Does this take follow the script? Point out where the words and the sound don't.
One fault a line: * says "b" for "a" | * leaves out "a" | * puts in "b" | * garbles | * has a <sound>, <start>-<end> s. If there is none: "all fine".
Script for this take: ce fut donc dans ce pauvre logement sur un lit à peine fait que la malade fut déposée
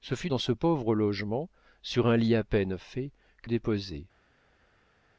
* leaves out "donc"
* leaves out "la malade fut"